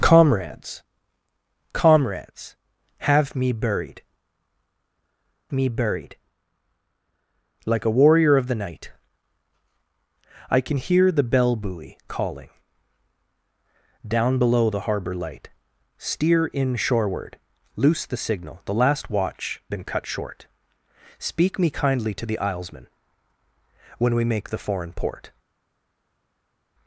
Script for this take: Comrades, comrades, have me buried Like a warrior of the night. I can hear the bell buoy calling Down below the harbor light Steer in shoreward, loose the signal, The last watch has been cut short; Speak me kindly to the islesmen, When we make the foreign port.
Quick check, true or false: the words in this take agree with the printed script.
false